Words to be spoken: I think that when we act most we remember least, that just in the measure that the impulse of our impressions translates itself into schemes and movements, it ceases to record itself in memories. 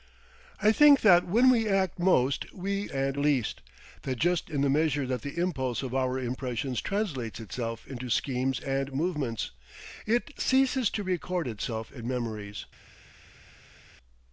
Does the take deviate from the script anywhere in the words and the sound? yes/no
yes